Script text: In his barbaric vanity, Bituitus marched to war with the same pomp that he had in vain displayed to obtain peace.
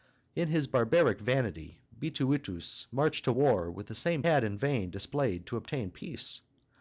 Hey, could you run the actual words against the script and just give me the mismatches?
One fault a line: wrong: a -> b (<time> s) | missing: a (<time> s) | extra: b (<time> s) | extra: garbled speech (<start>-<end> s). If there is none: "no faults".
missing: pomp that he (4.2 s)